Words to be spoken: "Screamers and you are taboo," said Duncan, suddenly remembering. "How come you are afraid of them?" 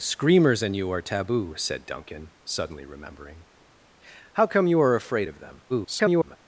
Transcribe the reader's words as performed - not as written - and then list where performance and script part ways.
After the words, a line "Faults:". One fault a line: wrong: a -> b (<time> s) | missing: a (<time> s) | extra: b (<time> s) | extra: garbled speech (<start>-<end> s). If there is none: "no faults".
"Screamers and you are taboo," said Duncan, suddenly remembering. "How come you are afraid of them?" [garbled]
Faults:
extra: garbled speech (5.7-6.4 s)